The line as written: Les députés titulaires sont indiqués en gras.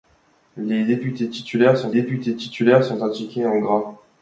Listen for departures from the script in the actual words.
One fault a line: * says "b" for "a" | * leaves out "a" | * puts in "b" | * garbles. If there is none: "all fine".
* puts in "députés titulaires sont"